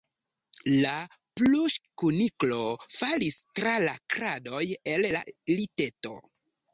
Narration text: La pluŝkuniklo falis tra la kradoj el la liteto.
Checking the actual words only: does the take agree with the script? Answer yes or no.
yes